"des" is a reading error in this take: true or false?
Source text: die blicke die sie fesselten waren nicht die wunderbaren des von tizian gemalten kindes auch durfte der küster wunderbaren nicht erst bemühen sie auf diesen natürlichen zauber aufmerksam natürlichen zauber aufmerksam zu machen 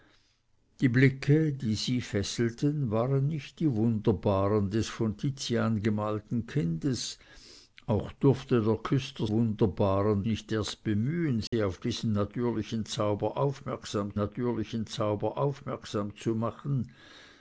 false